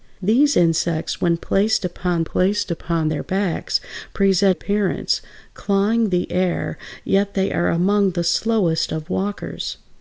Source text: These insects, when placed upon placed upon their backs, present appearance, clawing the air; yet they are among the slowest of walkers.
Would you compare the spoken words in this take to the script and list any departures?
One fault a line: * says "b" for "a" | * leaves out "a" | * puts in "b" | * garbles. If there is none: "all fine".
all fine